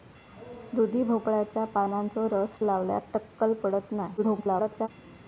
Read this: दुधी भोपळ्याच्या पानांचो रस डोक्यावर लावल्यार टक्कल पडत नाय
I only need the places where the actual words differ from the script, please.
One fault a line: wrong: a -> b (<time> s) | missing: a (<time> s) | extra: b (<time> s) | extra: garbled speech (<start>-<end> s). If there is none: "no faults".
missing: डोक्यावर (2.6 s)
extra: garbled speech (4.2-4.9 s)